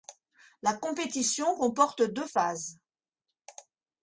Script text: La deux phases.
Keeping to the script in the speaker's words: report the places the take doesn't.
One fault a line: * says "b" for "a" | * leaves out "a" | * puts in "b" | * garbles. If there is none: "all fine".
* puts in "compétition comporte"